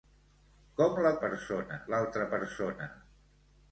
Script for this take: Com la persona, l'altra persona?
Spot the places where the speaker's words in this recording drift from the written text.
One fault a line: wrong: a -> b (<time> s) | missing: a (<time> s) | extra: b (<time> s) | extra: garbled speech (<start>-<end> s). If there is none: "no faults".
no faults